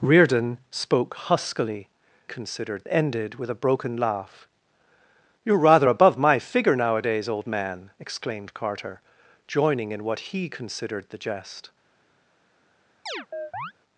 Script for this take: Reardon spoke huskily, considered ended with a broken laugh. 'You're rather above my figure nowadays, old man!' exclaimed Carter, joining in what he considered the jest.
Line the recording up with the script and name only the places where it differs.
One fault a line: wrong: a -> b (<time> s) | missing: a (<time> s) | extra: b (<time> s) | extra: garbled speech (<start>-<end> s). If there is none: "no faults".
no faults